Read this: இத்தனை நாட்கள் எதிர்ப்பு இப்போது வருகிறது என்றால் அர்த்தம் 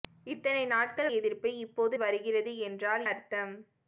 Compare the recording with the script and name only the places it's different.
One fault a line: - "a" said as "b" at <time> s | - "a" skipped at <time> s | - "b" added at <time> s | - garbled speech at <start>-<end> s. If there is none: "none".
none